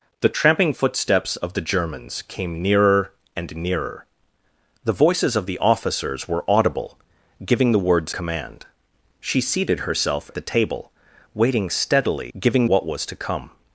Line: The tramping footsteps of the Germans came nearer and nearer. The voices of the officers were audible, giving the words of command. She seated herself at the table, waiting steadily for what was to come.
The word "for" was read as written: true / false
false